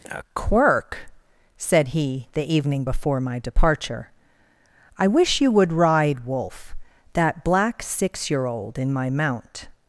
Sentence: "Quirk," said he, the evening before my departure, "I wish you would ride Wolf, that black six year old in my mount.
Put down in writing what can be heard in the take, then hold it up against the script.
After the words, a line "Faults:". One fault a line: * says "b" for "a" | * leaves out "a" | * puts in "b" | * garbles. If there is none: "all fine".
a "Quirk," said he, the evening before my departure, "I wish you would ride Wolf, that black six year old in my mount.
Faults:
* puts in "a"